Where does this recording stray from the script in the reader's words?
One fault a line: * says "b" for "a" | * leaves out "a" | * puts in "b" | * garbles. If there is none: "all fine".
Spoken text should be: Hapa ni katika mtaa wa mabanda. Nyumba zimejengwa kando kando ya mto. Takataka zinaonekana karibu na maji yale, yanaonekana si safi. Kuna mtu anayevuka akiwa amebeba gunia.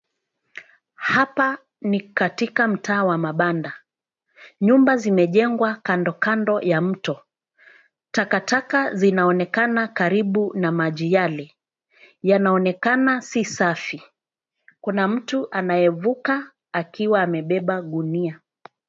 all fine